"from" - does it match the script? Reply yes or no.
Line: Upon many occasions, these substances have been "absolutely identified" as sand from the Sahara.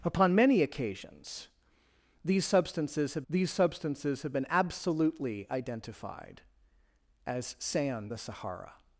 no